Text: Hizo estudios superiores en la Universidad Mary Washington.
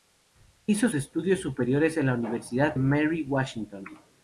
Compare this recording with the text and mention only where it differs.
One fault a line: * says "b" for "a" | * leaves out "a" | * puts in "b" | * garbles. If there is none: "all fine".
all fine